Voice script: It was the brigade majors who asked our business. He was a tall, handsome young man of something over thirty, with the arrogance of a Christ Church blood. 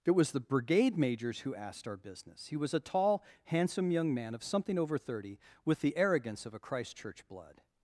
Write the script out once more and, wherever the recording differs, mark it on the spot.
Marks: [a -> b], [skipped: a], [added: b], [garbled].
It was the brigade majors who asked our business. He was a tall, handsome young man of something over thirty, with the arrogance of a Christ Church blood.